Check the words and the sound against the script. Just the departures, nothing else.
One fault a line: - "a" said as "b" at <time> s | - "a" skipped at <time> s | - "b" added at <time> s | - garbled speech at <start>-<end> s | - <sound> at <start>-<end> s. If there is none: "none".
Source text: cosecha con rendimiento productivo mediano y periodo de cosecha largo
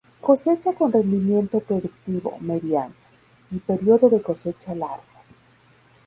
none